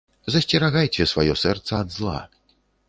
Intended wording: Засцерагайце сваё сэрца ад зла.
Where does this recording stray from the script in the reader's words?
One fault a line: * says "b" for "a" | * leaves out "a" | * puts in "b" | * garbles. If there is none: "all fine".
all fine